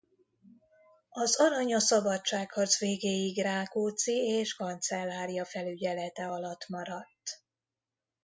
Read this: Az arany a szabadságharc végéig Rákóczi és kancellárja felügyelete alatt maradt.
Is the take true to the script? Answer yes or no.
yes